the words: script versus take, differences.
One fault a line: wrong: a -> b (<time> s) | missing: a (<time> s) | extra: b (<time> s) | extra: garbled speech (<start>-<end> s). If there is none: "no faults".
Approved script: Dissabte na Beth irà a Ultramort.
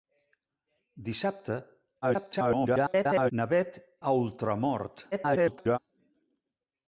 extra: garbled speech (2.0-3.3 s)
missing: irà (3.8 s)
extra: garbled speech (5.1-5.8 s)